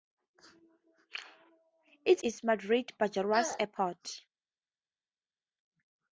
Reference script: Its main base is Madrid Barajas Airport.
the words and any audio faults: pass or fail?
fail